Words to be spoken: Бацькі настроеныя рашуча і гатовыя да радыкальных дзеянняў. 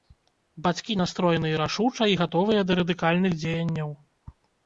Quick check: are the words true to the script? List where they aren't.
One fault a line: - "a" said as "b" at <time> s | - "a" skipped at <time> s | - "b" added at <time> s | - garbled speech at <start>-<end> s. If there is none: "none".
none